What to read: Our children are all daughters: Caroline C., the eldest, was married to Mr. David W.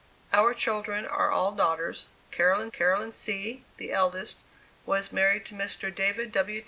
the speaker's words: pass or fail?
fail